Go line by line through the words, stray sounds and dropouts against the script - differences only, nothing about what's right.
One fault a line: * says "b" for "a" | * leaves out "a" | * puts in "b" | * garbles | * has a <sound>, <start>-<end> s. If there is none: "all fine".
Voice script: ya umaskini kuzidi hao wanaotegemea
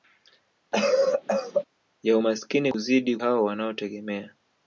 * has a cough, 0.7-1.6 s